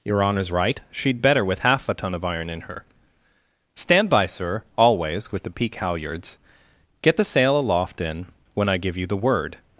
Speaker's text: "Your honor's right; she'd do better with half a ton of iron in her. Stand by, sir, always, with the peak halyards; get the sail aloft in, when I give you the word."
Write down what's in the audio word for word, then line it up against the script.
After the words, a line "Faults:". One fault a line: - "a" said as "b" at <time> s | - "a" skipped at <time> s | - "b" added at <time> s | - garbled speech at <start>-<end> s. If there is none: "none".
"Your honor's right; she'd better with half a ton of iron in her. Stand by, sir, always, with the peak halyards; get the sail aloft in, when I give you the word."
Faults:
- "do" skipped at 1.2 s